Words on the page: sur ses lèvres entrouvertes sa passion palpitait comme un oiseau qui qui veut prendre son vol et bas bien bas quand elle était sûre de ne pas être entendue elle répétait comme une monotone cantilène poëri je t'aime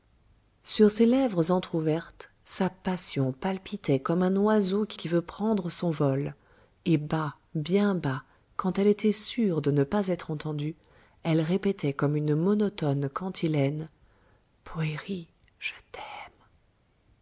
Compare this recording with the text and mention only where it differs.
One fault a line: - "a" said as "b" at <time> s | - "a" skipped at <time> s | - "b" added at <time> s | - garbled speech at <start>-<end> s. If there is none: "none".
none